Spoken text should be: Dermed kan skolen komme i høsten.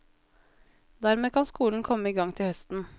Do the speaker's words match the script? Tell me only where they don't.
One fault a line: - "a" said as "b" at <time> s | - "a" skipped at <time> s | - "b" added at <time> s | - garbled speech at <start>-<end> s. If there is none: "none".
- "gang til" added at 2.1 s